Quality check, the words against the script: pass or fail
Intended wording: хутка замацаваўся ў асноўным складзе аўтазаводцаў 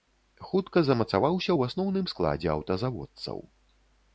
pass